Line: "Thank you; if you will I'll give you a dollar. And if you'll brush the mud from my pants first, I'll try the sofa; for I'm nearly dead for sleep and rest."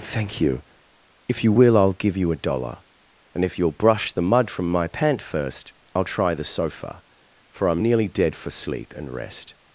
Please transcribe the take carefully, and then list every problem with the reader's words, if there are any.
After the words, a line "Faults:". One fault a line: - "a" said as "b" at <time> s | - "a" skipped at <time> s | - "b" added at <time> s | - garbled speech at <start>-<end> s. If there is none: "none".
"Thank you; if you will I'll give you a dollar. And if you'll brush the mud from my pant first, I'll try the sofa; for I'm nearly dead for sleep and rest."
Faults:
- "pants" said as "pant" at 4.9 s